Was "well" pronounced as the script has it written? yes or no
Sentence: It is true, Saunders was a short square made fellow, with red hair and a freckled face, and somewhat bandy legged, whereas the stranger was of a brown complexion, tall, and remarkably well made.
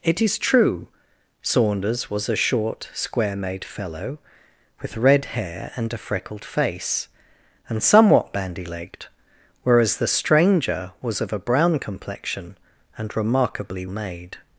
no